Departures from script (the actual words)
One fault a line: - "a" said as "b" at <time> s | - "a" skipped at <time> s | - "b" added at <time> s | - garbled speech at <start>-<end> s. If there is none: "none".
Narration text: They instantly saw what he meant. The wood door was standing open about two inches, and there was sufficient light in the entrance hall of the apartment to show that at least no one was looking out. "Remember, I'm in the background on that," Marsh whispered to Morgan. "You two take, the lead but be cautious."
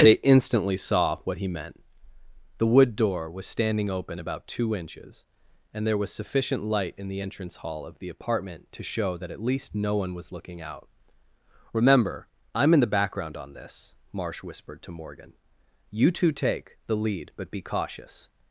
- "that" said as "this" at 13.5 s